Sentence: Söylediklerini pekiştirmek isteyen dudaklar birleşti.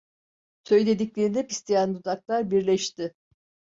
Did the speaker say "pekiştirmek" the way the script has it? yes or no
no